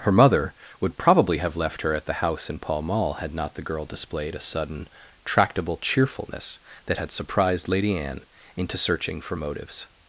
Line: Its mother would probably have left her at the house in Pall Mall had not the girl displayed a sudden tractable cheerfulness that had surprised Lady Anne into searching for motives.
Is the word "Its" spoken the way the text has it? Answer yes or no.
no